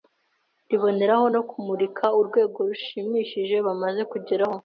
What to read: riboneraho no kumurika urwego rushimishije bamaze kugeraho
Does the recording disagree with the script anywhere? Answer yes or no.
no